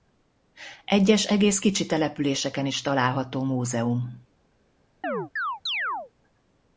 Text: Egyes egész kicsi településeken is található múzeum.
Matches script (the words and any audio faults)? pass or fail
fail